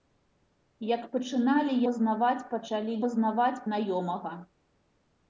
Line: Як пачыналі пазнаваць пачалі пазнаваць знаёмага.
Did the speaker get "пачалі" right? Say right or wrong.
right